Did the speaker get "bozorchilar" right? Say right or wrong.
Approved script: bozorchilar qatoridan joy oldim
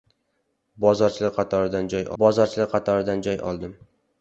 right